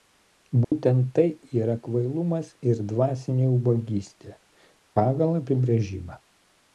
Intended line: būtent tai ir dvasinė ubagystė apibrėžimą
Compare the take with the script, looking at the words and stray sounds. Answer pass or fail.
fail